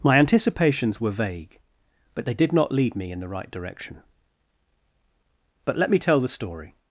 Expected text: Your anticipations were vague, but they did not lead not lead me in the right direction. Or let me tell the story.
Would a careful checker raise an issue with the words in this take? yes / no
yes